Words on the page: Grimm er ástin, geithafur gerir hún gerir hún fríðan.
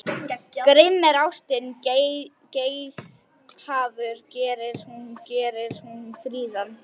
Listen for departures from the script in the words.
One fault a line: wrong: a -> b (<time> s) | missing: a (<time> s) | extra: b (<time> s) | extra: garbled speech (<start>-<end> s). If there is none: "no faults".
no faults